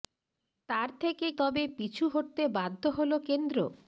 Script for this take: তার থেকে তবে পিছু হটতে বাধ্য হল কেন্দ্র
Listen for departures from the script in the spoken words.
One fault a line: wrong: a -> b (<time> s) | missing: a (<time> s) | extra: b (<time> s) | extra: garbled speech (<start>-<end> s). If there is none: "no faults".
no faults